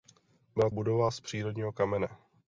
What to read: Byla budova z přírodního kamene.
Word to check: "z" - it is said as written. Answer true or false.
true